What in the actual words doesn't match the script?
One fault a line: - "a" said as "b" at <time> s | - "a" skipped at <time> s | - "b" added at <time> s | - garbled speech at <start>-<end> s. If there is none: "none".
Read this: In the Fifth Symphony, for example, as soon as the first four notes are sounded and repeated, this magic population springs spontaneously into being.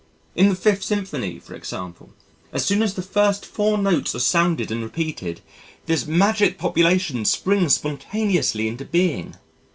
none